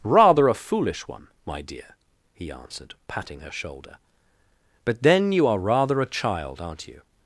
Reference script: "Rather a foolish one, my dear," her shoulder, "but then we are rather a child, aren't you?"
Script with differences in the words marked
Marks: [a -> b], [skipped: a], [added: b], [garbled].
"Rather a foolish one, my dear," [added: he answered patting] her shoulder, "but then [we -> you] are rather a child, aren't you?"